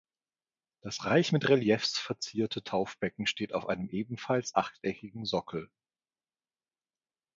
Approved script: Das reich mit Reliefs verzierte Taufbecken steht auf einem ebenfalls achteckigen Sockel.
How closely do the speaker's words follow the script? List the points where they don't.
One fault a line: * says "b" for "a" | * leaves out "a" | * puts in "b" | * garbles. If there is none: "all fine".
all fine